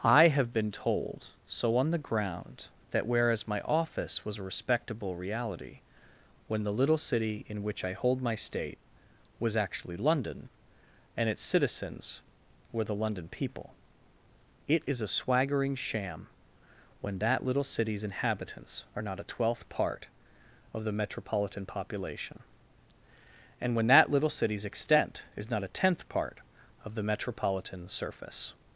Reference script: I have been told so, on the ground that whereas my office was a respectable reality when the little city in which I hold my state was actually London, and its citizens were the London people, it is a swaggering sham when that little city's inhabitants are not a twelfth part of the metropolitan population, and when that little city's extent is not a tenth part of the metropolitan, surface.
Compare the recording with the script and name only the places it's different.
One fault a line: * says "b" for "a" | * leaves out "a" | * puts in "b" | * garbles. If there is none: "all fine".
all fine